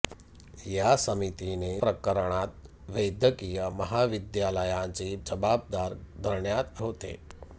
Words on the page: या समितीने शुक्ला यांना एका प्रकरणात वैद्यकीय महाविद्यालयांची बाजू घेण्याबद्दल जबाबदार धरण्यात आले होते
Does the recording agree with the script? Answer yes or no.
no